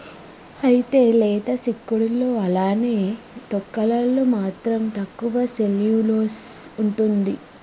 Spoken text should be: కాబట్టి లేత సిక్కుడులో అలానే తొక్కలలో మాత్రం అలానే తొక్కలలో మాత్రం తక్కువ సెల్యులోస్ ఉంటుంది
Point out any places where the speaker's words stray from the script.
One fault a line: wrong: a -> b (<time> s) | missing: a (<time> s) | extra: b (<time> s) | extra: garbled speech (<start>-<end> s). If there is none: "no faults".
wrong: కాబట్టి -> అయితే (0.6 s)
missing: అలానే తొక్కలలో మాత్రం (4.8 s)